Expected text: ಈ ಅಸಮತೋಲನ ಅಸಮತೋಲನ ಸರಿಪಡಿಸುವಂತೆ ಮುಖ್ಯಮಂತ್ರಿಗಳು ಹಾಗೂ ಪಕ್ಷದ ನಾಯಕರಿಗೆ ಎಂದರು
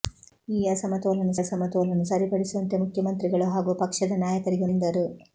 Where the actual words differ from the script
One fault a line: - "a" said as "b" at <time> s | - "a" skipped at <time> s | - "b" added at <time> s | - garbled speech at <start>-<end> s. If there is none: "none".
none